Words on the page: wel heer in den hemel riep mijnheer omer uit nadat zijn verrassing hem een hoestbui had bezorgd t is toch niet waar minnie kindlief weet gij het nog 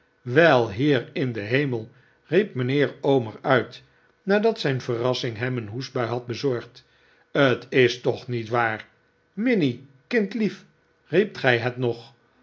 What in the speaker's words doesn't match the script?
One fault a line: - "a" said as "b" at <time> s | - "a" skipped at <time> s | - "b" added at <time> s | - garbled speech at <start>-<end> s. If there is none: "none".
- "weet" said as "riep" at 11.0 s